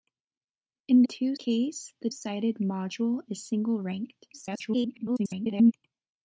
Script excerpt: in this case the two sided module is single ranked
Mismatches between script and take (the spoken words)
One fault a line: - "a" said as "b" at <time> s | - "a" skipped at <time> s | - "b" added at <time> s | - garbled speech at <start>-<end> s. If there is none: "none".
- "this" said as "two" at 1.0 s
- "two" skipped at 2.1 s
- garbled speech at 4.3-5.7 s